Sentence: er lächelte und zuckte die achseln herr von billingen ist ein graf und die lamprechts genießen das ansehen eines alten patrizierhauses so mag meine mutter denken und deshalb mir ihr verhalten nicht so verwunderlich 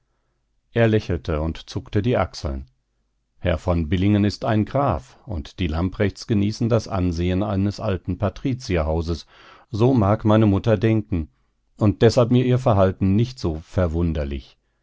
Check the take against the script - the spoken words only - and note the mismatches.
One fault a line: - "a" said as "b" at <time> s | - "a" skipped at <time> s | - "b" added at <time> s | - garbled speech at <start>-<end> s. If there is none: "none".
none